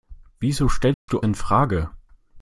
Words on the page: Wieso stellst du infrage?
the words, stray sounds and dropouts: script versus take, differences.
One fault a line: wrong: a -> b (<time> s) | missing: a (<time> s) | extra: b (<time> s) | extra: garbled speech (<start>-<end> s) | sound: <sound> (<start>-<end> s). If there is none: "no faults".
sound: dropout (0.9-1.1 s)